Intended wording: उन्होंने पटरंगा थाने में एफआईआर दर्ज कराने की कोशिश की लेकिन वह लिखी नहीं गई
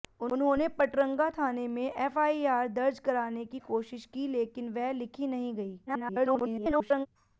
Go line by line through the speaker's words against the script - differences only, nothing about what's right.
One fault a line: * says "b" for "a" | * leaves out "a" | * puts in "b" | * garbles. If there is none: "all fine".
* garbles